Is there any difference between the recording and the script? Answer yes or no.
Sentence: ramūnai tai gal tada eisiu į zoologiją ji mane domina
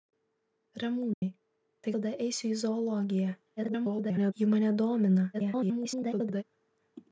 yes